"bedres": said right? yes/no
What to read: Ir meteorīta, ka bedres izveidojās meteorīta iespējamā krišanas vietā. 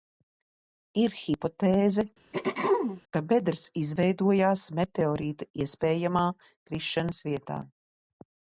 yes